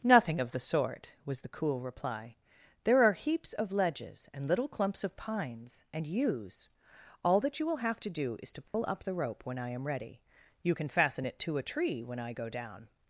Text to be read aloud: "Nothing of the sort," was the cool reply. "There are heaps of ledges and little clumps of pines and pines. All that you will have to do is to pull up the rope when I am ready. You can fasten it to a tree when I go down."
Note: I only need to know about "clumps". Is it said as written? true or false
true